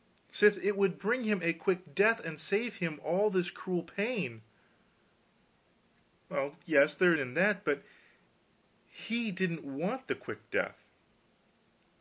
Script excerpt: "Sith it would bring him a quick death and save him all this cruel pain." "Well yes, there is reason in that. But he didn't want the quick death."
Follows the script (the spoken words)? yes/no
no